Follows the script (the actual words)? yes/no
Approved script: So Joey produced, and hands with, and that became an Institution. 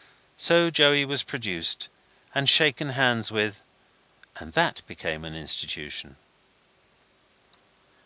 no